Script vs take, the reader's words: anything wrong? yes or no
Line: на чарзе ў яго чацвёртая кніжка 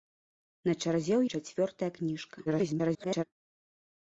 yes